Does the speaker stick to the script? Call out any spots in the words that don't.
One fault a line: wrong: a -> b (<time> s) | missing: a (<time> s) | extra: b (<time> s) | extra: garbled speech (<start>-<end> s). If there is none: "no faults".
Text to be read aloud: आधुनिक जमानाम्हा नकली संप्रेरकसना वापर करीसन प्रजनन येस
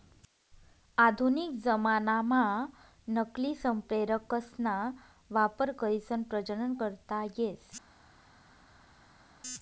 extra: करता (6.8 s)